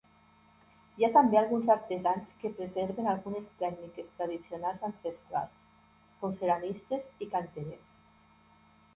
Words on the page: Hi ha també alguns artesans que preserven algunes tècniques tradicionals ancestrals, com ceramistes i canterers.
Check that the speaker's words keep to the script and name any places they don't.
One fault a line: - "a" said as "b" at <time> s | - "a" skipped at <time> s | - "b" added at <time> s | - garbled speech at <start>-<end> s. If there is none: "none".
none